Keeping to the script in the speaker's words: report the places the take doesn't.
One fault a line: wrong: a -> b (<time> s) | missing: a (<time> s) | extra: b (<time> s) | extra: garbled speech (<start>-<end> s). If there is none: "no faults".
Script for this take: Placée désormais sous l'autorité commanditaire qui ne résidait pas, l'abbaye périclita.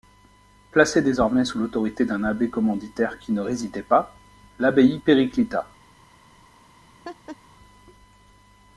extra: d'un abbé (2.0 s)